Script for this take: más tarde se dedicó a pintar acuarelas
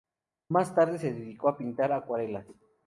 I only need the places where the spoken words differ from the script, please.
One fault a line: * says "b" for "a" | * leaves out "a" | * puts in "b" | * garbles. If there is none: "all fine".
all fine